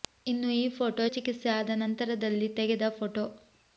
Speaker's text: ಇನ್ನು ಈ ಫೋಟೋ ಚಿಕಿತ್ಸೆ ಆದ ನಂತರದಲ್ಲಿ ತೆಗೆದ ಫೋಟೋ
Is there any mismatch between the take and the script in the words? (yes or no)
no